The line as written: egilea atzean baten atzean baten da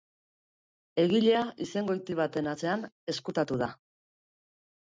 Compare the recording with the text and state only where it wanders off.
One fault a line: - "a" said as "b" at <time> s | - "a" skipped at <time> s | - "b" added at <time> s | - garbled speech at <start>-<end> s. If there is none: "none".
- "atzean" said as "izengoiti" at 1.7 s
- "baten" said as "ezkutatu" at 3.1 s